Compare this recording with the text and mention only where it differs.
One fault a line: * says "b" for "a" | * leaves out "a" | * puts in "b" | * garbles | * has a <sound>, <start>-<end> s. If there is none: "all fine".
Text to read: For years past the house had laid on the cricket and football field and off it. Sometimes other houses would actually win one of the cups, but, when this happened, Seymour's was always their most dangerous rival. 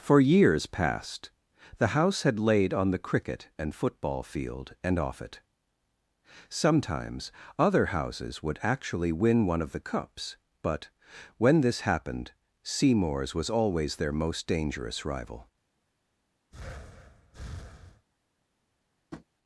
* has a breath, 16.5-18.1 s
* has a tap, 19.1-19.3 s